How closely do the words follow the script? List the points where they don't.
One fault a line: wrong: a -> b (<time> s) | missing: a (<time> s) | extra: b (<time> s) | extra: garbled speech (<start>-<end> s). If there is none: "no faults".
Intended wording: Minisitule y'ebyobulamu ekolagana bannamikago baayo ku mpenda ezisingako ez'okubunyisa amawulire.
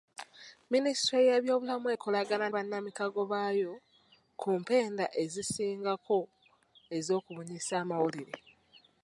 no faults